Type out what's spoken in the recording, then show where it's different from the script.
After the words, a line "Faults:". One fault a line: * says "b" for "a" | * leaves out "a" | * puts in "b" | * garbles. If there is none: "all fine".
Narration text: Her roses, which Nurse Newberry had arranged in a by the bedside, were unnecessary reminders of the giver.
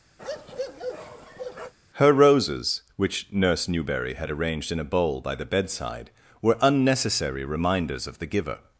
Her roses, which Nurse Newberry had arranged in a bowl by the bedside, were unnecessary reminders of the giver.
Faults:
* puts in "bowl"